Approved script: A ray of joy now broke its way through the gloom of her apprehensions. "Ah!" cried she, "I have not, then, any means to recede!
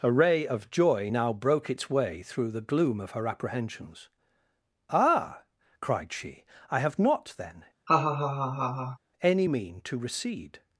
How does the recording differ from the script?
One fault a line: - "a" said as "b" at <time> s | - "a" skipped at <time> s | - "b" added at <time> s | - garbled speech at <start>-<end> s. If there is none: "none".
- "means" said as "mean" at 9.5 s